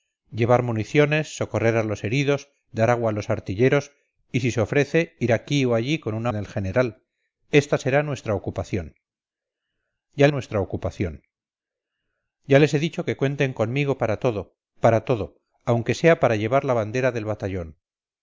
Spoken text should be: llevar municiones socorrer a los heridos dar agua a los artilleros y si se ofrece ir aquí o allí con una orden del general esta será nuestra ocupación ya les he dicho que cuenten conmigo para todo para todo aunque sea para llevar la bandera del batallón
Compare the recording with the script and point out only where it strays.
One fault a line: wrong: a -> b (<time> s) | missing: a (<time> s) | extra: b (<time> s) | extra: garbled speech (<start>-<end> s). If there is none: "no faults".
missing: orden (6.3 s)
extra: nuestra ocupación ya (10.3 s)